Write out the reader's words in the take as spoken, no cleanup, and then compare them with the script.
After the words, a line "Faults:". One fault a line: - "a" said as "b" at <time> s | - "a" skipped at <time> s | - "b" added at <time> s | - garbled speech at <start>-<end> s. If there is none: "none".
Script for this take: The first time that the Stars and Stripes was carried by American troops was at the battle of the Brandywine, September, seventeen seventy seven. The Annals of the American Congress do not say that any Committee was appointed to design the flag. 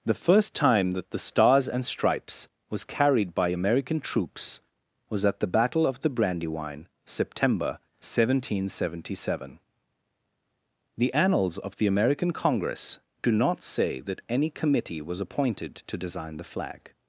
The first time that the Stars and Stripes was carried by American troops was at the battle of the Brandywine, September, seventeen seventy seven. The Annals of the American Congress do not say that any Committee was appointed to design the flag.
Faults:
none